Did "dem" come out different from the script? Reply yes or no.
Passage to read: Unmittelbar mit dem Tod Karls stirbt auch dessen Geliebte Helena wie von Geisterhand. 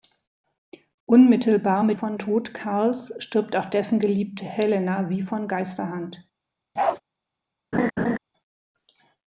yes